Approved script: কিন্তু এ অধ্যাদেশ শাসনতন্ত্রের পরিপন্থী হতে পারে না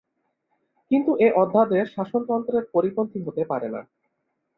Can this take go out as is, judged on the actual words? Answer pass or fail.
pass